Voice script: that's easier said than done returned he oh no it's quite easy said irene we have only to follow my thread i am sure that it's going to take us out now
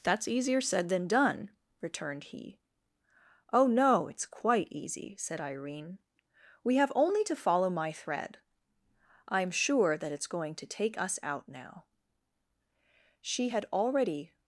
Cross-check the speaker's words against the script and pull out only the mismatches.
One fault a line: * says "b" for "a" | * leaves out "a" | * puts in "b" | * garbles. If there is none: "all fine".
* puts in "she had already"